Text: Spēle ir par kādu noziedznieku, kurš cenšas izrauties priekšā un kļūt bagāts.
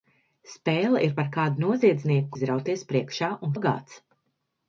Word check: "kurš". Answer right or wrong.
wrong